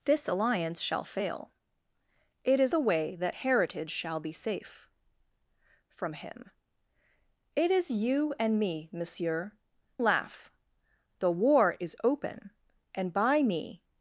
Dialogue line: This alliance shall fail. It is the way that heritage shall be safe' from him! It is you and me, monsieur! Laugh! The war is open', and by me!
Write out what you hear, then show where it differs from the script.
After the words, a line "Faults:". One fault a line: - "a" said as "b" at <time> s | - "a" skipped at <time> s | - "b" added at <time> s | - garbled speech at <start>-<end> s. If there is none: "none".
This alliance shall fail. It is the way that heritage shall be safe' from him! It is you and me, monsieur! Laugh! The war is open', and by me!
Faults:
none